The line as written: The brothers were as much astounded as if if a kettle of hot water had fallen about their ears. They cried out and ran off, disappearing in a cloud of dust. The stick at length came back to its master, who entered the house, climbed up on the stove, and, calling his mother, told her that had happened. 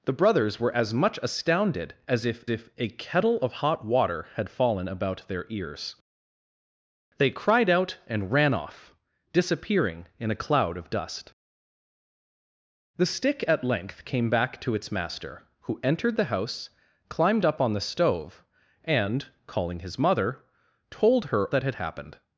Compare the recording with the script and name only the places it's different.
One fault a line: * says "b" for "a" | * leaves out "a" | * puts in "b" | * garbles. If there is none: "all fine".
all fine